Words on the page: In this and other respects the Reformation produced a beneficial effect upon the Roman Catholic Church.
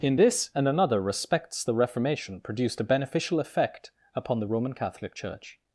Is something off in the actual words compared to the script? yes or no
yes